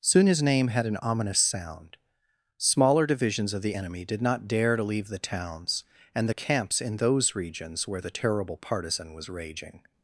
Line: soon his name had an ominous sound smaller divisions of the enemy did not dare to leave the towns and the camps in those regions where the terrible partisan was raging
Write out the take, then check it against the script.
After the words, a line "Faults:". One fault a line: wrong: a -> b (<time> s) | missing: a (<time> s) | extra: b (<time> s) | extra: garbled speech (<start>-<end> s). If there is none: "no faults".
soon his name had an ominous sound smaller divisions of the enemy did not dare to leave the towns and the camps in those regions where the terrible partisan was raging
Faults:
no faults